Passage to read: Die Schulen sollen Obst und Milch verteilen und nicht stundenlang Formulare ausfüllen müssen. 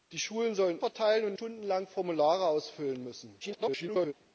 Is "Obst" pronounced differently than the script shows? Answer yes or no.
yes